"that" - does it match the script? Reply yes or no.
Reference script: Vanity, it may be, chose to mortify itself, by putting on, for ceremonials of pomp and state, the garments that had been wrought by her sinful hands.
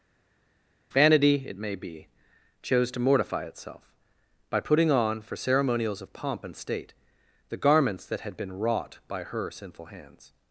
yes